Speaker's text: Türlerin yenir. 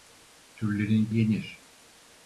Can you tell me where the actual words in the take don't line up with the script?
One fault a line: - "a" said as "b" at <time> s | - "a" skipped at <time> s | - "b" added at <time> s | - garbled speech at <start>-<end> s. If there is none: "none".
none